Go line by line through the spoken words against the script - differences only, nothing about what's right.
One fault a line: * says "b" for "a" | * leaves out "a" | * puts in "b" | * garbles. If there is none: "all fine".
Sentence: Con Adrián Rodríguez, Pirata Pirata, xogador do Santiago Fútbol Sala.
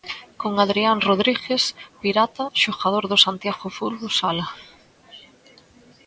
* leaves out "Pirata"